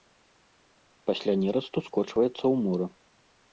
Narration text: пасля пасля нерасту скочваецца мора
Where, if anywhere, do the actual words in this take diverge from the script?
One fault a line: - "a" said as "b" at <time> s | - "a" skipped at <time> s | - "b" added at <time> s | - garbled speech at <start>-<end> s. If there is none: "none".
- "пасля" skipped at 1.3 s
- "ў" added at 2.4 s